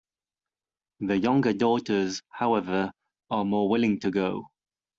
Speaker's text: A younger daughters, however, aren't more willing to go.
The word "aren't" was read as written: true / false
false